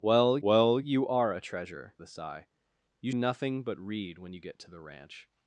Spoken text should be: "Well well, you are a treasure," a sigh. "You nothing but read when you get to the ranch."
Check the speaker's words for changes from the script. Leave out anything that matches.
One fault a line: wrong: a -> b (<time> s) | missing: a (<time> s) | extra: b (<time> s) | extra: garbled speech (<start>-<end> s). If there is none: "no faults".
no faults